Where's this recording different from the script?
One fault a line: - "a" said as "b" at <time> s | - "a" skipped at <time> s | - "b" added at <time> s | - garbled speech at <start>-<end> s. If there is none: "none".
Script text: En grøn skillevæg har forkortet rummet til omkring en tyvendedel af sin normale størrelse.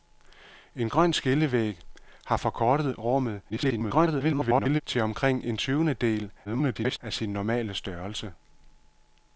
- garbled speech at 3.5-4.8 s
- garbled speech at 6.4-7.0 s